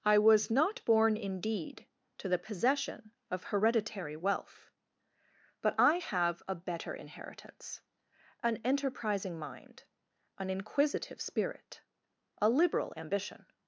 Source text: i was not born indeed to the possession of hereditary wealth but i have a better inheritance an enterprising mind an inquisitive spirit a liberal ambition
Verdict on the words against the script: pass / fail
pass